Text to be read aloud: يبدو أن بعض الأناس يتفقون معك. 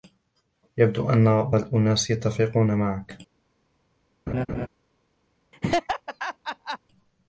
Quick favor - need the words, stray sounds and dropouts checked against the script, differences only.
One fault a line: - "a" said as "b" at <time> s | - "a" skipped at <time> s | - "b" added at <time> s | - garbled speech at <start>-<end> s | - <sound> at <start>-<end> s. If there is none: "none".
- "بعض" skipped at 1.5 s
- laugh at 4.3-4.7 s
- laugh at 5.5-6.8 s